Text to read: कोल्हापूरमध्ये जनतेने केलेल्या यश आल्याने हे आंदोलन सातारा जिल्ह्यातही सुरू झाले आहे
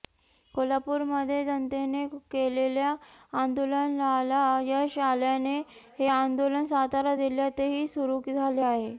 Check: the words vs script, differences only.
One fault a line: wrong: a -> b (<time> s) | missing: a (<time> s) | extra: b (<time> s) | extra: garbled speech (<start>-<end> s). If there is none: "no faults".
extra: आंदोलनाला (3.4 s)